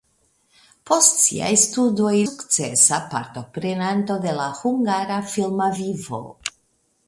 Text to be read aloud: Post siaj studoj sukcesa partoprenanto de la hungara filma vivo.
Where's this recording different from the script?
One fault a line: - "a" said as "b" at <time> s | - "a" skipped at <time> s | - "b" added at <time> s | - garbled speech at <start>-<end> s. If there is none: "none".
none